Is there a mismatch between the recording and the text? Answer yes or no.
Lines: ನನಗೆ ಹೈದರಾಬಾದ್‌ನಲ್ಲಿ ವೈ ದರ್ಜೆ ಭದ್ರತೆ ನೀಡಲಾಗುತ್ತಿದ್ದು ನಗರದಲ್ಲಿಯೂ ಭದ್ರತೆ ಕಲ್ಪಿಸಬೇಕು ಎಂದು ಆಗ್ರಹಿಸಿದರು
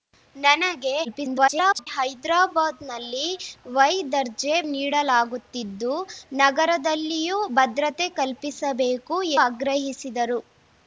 yes